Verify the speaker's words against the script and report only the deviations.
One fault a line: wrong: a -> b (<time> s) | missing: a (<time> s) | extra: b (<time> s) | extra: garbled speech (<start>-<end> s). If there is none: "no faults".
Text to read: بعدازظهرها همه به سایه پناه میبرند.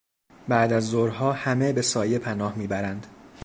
no faults